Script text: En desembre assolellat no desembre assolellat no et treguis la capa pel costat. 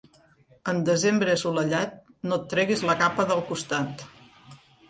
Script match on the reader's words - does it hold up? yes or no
no